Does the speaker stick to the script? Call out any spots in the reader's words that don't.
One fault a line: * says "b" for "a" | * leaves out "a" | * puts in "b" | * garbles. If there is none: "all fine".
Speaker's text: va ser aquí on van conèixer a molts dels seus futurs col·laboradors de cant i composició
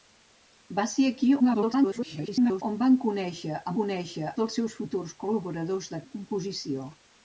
* garbles
* says "conèixer" for "molts"
* leaves out "cant"